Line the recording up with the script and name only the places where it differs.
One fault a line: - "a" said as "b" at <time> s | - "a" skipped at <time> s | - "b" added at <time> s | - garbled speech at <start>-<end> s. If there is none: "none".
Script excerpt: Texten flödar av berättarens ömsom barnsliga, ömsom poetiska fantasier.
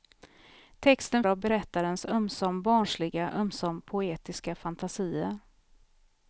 - "flödar" skipped at 1.2 s